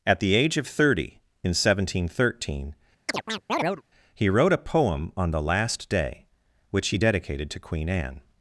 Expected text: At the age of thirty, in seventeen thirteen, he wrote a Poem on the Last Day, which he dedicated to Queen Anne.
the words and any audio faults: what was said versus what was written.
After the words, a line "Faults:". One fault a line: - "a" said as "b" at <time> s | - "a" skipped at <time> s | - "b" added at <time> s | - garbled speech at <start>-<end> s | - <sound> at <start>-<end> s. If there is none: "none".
At the age of thirty, in seventeen thirteen, he wrote a Poem on the Last Day, which he dedicated to Queen Anne.
Faults:
- chirp at 3.1-3.8 s